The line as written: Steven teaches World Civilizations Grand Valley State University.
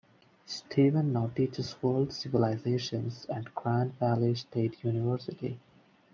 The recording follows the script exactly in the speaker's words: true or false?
false